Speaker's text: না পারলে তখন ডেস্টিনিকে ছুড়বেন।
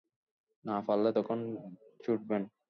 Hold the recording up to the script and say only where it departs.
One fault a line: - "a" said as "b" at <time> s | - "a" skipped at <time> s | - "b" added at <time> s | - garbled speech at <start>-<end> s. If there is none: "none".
- "ডেস্টিনিকে" skipped at 1.4 s